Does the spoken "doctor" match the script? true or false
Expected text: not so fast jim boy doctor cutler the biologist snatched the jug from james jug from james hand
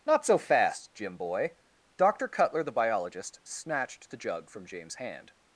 true